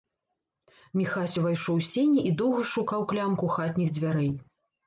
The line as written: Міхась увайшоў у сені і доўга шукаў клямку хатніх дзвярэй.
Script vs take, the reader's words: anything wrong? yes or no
no